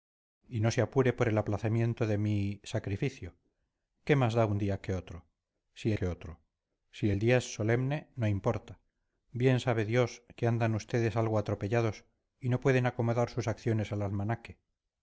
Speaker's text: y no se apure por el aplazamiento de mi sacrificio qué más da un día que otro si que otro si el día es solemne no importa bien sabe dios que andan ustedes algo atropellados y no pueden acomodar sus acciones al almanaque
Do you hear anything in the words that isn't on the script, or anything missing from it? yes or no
no